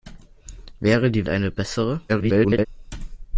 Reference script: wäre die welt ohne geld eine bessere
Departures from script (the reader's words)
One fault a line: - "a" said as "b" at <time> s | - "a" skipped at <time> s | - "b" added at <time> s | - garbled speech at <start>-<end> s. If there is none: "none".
- "welt ohne geld" skipped at 1.3 s
- garbled speech at 2.1-2.7 s